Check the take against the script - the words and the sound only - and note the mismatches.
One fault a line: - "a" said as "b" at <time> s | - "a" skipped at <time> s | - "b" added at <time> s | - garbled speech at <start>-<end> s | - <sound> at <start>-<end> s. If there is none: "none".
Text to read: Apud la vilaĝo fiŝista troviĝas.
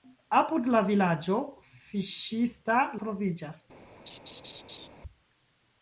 - laugh at 4.1-4.9 s